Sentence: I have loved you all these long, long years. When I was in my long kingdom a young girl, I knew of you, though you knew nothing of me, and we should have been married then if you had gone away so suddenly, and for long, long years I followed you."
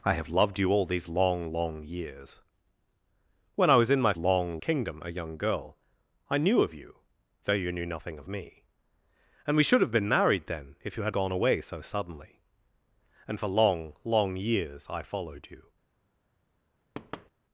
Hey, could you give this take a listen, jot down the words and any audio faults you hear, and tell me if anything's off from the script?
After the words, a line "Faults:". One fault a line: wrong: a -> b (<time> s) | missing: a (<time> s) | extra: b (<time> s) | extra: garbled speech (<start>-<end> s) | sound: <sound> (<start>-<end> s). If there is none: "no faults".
I have loved you all these long, long years. When I was in my long kingdom a young girl, I knew of you, though you knew nothing of me, and we should have been married then if you had gone away so suddenly, and for long, long years I followed you."
Faults:
sound: thud (16.9-17.3 s)